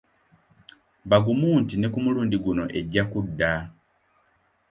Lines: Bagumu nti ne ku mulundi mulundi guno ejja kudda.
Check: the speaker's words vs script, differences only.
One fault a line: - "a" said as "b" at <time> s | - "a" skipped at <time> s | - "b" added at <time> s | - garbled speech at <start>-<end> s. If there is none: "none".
- "mulundi" skipped at 2.4 s